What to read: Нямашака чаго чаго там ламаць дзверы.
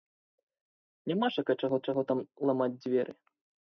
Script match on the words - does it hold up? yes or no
yes